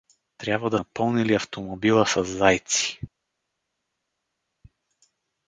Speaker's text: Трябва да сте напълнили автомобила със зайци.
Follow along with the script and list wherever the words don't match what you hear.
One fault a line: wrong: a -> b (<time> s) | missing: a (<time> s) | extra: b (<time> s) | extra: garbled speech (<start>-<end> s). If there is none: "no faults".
missing: сте (0.8 s)